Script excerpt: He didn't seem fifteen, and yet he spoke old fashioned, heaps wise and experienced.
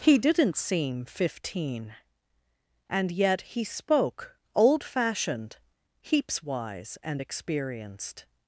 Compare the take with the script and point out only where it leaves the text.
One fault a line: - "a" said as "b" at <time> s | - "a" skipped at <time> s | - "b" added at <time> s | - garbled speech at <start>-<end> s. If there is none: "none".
none